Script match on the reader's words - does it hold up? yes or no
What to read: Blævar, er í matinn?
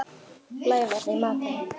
yes